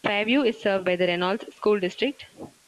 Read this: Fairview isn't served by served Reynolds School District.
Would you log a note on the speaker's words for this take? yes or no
yes